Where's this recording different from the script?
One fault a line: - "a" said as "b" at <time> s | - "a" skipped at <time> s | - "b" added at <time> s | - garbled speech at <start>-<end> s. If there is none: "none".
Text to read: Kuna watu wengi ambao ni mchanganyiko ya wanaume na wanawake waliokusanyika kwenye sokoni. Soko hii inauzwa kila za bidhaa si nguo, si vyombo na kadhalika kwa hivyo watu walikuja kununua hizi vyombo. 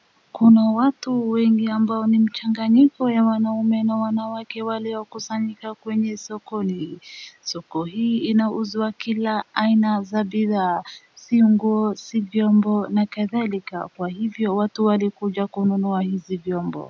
- "aina" added at 9.5 s